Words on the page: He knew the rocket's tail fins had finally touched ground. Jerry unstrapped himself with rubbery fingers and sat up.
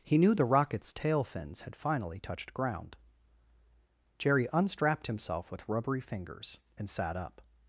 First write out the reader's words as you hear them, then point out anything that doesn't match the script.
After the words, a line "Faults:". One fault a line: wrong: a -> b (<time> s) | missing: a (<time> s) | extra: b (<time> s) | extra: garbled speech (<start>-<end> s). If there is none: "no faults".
He knew the rocket's tail fins had finally touched ground. Jerry unstrapped himself with rubbery fingers and sat up.
Faults:
no faults